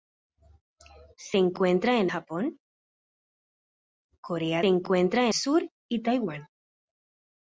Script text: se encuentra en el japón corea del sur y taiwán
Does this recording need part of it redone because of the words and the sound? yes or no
yes